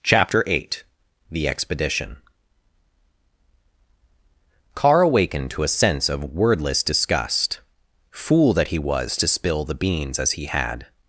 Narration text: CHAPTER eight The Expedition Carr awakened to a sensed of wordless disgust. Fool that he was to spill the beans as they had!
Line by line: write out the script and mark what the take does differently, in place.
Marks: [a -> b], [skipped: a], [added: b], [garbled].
CHAPTER eight The Expedition Carr awakened to a [sensed -> sense] of wordless disgust. Fool that he was to spill the beans as [they -> he] had!